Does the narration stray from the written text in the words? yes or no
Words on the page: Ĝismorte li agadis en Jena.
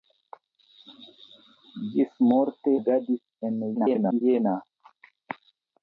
yes